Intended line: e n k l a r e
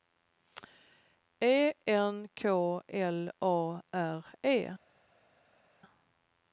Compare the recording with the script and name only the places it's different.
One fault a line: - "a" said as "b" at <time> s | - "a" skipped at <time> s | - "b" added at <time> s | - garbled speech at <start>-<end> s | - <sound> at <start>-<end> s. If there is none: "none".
none